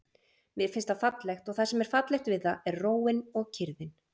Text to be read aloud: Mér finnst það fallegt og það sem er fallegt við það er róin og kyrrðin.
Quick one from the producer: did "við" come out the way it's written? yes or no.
yes